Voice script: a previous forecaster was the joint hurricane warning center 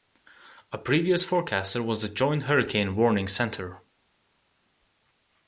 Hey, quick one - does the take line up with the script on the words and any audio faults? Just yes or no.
yes